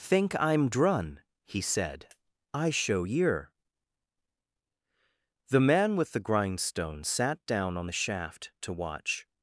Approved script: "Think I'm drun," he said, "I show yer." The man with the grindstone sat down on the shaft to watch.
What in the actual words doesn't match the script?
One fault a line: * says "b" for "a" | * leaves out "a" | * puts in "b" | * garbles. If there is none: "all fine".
all fine